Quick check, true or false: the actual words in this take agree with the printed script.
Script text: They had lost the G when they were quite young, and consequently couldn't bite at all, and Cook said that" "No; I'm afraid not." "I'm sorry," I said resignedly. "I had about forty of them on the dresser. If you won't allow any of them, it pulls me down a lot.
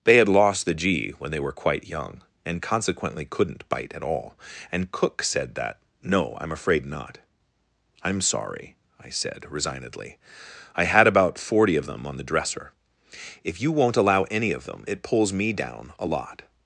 true